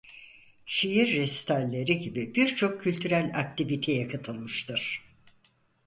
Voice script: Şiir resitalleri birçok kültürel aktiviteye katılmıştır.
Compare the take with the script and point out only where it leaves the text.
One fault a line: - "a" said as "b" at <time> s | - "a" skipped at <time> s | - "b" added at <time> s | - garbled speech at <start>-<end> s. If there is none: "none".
- "gibi" added at 2.0 s